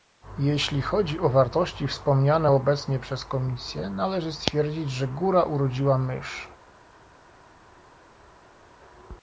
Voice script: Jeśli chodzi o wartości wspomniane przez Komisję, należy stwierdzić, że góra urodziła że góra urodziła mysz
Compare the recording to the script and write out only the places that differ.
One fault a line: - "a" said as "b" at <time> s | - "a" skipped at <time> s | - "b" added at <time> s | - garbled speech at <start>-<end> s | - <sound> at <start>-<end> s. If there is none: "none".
- "obecnie" added at 2.5 s
- "że góra urodziła" skipped at 6.0 s